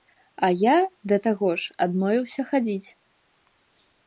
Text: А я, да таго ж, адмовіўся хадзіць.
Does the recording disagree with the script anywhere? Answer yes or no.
no